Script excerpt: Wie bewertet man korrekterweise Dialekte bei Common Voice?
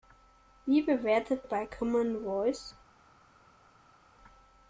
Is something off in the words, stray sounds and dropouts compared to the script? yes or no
yes